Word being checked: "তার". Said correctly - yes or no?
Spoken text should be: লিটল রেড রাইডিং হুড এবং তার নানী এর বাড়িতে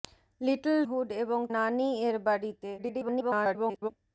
no